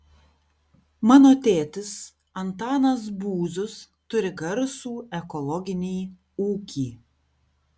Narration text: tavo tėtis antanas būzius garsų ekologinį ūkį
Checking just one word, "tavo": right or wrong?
wrong